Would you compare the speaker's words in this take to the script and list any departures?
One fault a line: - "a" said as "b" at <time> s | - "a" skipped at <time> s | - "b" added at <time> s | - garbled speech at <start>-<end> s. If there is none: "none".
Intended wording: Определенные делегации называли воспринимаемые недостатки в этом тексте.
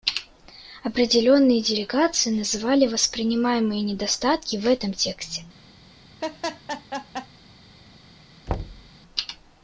none